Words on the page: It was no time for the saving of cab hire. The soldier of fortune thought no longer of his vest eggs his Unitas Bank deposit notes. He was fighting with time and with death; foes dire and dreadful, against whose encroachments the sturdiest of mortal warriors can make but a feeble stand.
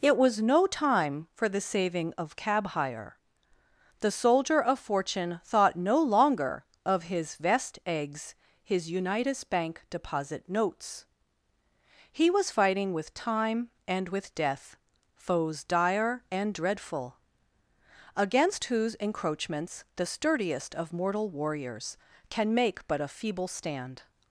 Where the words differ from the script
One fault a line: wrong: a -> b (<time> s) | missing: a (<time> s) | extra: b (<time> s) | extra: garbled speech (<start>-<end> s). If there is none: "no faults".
no faults